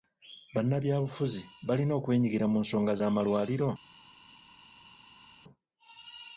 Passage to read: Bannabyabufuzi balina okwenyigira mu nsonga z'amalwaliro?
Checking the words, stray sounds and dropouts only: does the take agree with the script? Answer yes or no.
yes